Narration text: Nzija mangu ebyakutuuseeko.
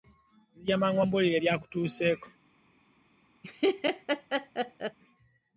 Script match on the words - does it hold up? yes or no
no